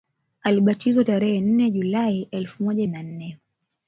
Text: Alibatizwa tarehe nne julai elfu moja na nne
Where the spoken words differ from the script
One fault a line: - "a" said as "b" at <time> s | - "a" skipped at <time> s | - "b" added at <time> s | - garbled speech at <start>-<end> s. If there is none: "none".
none